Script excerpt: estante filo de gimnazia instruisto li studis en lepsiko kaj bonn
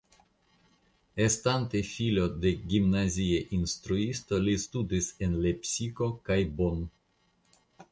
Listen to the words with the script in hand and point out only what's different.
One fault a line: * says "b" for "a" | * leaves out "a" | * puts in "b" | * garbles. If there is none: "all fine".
all fine